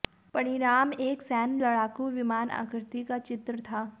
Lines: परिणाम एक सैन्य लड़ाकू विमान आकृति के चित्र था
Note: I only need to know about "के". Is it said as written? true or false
false